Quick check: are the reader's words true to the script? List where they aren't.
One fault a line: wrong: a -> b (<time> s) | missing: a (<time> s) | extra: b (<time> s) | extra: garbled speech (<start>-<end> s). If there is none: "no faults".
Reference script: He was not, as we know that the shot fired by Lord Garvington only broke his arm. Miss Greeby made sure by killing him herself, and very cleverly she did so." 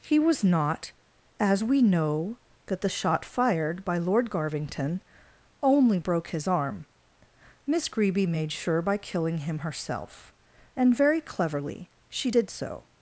no faults